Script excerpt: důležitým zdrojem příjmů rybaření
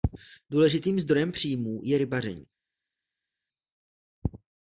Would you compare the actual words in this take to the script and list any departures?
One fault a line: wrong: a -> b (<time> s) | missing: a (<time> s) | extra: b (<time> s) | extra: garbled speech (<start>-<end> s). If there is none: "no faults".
extra: je (1.8 s)